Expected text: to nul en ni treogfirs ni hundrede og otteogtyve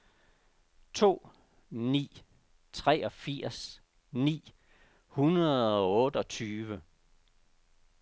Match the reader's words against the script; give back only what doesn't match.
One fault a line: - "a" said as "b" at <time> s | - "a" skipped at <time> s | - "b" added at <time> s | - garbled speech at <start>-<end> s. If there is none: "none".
- "nul en" skipped at 1.3 s